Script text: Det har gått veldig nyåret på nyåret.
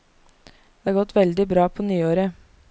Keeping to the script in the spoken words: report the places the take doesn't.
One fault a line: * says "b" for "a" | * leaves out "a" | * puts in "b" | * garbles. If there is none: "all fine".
* says "bra" for "nyåret"